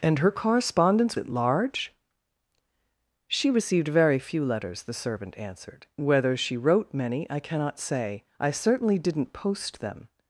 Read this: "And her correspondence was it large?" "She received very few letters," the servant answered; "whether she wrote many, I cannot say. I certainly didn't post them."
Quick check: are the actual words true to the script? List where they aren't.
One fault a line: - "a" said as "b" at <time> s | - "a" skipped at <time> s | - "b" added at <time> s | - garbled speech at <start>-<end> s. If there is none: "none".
- "was" skipped at 1.2 s